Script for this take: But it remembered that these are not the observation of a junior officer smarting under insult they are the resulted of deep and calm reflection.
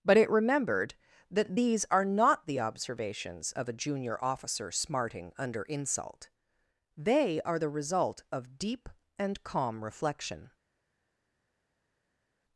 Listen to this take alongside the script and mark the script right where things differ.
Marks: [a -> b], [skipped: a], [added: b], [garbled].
But it remembered that these are not the [observation -> observations] of a junior officer smarting under insult they are the [resulted -> result] of deep and calm reflection.